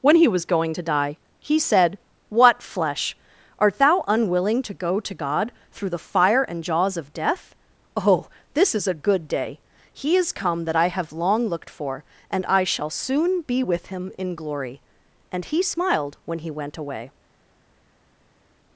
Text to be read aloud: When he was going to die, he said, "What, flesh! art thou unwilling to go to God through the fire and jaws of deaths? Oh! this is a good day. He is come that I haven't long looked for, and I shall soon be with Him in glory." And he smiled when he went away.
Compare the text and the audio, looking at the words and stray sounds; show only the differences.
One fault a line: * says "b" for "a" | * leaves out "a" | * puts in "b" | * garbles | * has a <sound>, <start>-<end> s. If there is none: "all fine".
* says "death" for "deaths"
* says "have" for "haven't"